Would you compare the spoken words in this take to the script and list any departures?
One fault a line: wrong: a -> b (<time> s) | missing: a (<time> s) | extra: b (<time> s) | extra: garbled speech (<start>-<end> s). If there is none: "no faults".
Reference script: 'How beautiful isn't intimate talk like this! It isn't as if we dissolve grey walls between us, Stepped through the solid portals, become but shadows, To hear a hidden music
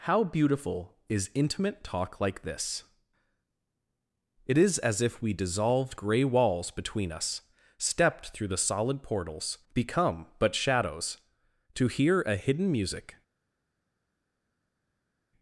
wrong: isn't -> is (1.1 s)
wrong: isn't -> is (4.6 s)
wrong: dissolve -> dissolved (5.3 s)